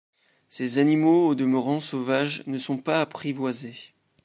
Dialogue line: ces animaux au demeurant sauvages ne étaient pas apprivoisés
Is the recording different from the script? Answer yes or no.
yes